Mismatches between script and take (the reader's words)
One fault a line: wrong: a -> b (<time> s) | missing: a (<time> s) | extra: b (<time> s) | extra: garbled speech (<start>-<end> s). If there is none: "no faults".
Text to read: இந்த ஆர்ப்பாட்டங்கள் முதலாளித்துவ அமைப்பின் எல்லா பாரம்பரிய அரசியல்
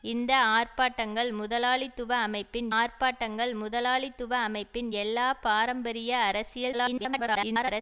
extra: ஆர்ப்பாட்டங்கள் முதலாளித்துவ அமைப்பின் (2.7 s)
extra: garbled speech (6.7-7.8 s)